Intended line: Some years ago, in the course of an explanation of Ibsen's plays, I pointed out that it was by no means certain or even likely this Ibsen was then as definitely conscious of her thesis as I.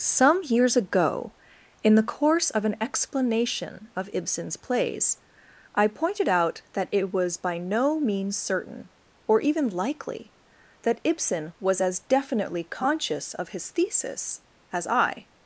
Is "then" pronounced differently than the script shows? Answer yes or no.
yes